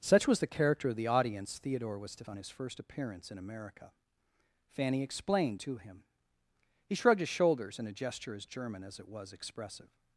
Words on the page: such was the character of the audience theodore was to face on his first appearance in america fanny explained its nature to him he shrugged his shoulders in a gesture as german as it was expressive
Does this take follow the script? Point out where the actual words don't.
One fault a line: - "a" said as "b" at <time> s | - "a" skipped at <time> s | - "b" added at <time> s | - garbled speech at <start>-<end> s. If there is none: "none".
- "face" skipped at 2.2 s
- "its nature" skipped at 5.6 s